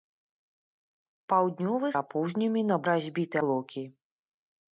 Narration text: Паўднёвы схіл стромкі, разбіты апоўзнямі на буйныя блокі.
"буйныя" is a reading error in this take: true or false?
true